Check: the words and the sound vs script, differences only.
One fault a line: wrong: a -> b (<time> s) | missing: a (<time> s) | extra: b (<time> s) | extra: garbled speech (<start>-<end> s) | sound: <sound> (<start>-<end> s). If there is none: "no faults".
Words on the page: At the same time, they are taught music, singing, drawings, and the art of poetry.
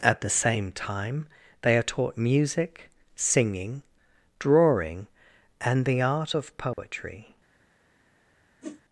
wrong: drawings -> drawing (4.4 s)
sound: dropout (6.7-6.8 s)
sound: whoosh (8.6-8.8 s)